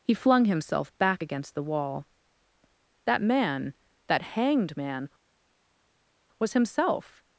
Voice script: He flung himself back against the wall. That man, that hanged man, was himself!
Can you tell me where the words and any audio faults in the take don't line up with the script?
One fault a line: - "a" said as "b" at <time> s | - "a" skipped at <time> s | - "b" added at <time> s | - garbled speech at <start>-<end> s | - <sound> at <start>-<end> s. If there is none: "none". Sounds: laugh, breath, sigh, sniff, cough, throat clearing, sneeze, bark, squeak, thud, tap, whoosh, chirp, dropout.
none